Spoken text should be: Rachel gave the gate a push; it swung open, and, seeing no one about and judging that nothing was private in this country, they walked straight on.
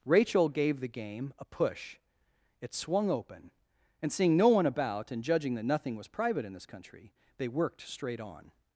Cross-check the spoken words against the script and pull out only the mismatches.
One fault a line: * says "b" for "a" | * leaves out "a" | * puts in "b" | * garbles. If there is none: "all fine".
* says "game" for "gate"
* says "worked" for "walked"